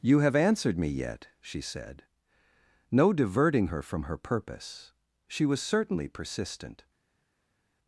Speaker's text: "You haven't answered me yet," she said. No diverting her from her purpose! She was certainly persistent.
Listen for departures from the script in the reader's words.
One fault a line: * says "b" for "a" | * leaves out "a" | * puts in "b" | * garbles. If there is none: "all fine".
* says "have" for "haven't"